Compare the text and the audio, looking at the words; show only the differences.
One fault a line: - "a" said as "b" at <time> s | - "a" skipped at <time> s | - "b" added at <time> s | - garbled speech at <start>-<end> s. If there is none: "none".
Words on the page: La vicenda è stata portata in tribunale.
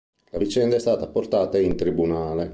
none